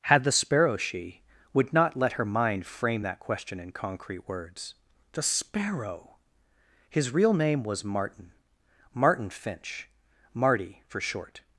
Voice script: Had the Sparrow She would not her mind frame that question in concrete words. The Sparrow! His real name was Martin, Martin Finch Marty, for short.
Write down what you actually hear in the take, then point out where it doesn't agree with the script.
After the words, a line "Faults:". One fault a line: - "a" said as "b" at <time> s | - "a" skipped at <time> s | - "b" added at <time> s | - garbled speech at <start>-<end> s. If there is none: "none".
Had the Sparrow She would not let her mind frame that question in concrete words. The Sparrow! His real name was Martin, Martin Finch Marty, for short.
Faults:
- "let" added at 1.9 s